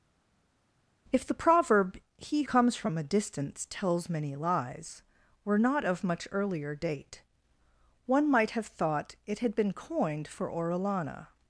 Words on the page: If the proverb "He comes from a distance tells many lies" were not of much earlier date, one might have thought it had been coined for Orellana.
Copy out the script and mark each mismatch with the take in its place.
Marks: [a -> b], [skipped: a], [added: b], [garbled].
If the proverb "He comes from a distance tells many lies" were not of much earlier date, one might have thought it had been coined for Orellana.